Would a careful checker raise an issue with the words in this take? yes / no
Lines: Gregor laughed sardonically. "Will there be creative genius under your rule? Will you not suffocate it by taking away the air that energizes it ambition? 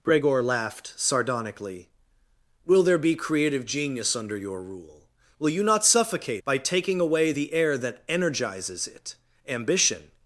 yes